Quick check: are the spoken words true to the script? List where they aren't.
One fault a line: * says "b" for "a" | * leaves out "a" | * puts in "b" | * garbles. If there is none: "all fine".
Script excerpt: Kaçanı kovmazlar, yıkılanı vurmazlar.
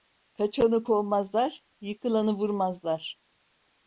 all fine